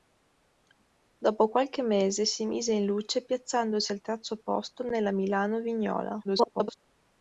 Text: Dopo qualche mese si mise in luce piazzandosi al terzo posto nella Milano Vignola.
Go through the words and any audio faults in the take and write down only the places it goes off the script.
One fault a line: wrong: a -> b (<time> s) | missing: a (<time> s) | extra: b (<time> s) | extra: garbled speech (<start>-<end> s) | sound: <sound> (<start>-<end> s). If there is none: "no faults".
extra: garbled speech (6.2-6.7 s)